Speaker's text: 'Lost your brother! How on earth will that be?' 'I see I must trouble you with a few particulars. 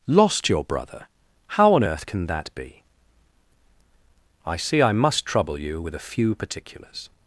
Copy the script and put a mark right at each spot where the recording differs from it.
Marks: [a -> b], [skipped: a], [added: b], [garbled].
'Lost your brother! How on earth [will -> can] that be?' 'I see I must trouble you with a few particulars.